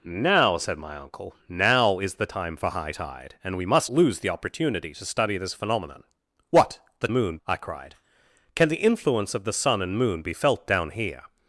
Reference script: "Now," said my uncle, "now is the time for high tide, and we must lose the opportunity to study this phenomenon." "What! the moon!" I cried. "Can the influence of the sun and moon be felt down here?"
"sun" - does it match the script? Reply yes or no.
yes